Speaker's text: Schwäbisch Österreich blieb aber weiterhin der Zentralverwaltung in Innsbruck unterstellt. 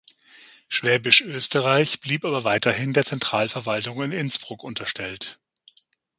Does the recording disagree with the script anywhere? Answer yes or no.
no